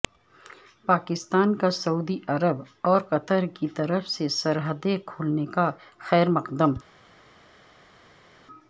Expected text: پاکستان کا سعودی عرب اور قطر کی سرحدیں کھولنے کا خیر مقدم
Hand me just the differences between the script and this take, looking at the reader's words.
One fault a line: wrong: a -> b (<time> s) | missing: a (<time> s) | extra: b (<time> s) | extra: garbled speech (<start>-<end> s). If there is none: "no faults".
extra: طرف سے (3.8 s)